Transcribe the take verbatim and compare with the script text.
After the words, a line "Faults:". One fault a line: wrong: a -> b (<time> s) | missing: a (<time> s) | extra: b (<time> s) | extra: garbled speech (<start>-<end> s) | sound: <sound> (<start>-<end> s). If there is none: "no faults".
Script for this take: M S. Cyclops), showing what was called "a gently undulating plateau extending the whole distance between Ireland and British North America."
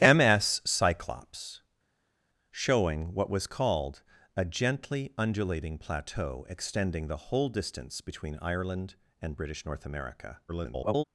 M S. Cyclops), showing what was called "a gently undulating plateau extending the whole distance between Ireland and British North America." [garbled]
Faults:
extra: garbled speech (10.5-11.0 s)